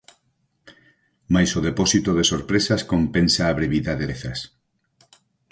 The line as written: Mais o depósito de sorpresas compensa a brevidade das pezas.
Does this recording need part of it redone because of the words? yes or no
yes